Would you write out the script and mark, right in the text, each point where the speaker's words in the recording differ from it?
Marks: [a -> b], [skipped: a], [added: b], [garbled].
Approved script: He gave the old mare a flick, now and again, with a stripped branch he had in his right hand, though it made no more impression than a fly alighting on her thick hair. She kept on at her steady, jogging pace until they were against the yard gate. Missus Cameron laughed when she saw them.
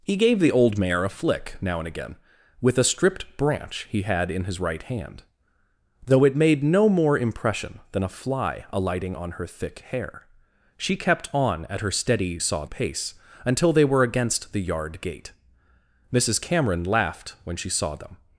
He gave the old mare a flick, now and again, with a stripped branch he had in his right hand, though it made no more impression than a fly alighting on her thick hair. She kept on at her steady, [jogging -> saw] pace until they were against the yard gate. Missus Cameron laughed when she saw them.